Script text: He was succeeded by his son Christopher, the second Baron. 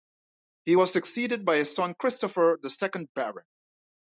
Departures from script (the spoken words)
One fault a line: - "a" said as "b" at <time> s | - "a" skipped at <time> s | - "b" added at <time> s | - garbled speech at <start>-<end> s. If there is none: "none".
none